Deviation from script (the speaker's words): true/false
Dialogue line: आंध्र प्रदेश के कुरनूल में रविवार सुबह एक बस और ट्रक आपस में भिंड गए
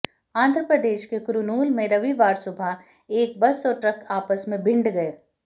false